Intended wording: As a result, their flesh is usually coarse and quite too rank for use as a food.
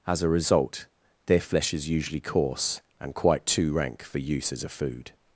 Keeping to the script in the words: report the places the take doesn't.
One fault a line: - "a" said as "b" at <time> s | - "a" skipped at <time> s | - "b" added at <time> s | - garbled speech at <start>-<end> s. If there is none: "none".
none